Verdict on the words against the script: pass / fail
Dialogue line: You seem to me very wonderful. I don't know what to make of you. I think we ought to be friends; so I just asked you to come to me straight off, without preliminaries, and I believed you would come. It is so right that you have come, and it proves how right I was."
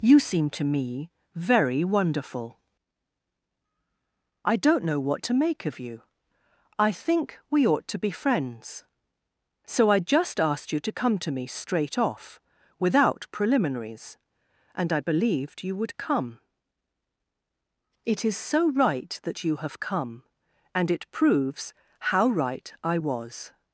pass